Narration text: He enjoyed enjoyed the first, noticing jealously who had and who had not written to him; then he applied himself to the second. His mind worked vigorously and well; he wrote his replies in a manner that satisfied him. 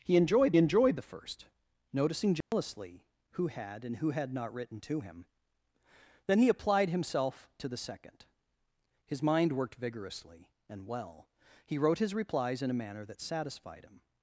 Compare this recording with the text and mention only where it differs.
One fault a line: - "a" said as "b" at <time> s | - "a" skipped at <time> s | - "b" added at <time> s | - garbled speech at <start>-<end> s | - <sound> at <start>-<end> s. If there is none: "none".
- dropout at 2.4-2.5 s